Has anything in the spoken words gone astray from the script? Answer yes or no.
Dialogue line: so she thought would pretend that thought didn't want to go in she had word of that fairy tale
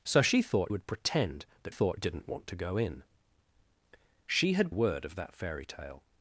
no